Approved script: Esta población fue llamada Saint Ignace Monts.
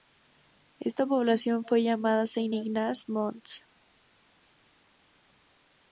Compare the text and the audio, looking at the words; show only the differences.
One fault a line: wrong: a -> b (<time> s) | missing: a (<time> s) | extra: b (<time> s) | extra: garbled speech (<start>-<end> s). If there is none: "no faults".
no faults